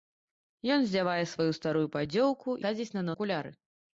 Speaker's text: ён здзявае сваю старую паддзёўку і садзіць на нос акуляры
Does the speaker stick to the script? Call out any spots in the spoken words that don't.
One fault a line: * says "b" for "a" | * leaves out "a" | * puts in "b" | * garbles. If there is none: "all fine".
* leaves out "і"
* leaves out "нос"